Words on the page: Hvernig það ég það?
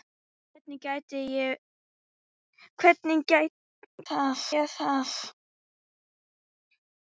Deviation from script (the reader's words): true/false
false